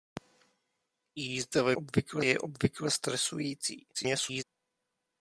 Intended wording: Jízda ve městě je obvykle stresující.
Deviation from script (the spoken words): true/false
true